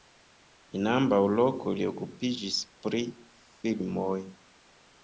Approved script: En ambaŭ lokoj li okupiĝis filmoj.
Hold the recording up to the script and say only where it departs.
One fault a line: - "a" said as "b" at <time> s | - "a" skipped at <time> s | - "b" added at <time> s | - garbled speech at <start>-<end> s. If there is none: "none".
- "pri" added at 2.9 s